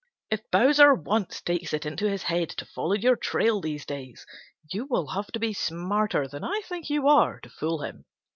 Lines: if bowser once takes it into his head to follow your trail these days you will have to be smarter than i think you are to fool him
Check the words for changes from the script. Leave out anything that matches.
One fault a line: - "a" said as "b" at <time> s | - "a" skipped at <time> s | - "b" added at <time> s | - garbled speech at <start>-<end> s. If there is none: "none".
none